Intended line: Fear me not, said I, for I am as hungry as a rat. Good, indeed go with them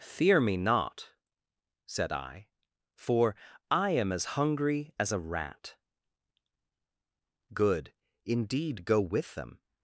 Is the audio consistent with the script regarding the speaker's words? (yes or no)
yes